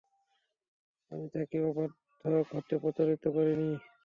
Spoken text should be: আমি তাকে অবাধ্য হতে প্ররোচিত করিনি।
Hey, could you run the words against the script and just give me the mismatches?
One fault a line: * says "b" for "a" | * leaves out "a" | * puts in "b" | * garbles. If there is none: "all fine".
all fine